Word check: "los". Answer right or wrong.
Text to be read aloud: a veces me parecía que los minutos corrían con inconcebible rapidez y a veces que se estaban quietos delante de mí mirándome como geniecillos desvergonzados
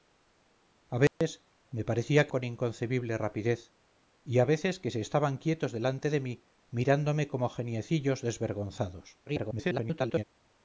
wrong